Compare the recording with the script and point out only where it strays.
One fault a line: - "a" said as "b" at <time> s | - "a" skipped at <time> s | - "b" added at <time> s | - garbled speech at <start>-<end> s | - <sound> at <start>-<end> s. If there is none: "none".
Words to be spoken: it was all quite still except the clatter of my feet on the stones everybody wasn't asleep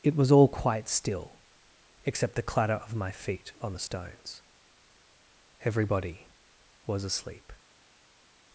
- "wasn't" said as "was" at 6.9 s